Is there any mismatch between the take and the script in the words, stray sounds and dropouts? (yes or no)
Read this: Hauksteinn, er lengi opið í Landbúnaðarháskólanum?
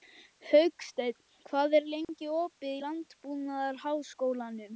yes